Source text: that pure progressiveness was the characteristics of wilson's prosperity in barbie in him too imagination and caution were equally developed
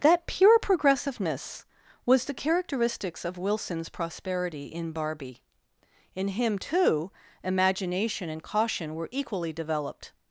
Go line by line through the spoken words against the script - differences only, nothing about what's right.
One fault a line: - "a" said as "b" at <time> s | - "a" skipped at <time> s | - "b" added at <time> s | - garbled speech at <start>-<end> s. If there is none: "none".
none